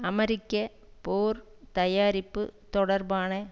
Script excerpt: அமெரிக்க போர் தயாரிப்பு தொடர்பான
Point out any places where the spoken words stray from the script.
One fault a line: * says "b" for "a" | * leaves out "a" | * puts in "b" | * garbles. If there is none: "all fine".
all fine